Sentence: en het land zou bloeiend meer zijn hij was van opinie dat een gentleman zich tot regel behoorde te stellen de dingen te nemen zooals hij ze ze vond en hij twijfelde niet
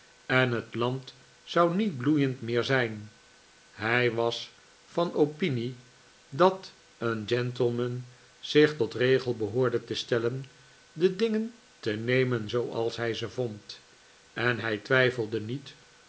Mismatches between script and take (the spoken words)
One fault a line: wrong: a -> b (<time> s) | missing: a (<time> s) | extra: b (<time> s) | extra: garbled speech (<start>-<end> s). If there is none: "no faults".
extra: niet (1.8 s)
missing: ze (13.3 s)